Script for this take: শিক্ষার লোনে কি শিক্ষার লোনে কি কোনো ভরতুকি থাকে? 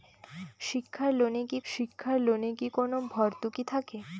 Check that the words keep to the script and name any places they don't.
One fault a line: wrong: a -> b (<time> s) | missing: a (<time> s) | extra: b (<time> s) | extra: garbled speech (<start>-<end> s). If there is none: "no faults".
no faults